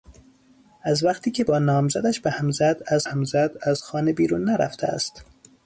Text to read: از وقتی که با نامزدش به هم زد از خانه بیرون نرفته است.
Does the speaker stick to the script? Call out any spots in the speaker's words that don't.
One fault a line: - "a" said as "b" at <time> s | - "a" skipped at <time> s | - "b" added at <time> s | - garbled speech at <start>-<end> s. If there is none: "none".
- "هم زد از" added at 3.0 s